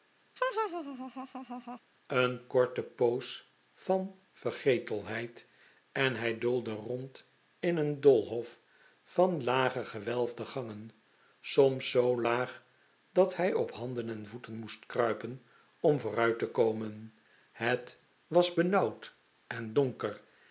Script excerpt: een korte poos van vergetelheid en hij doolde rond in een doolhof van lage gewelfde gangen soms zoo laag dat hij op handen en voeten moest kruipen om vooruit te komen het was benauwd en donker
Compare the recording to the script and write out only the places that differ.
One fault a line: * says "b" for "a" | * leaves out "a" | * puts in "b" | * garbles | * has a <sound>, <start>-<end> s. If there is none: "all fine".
* has a laugh, 0.4-1.8 s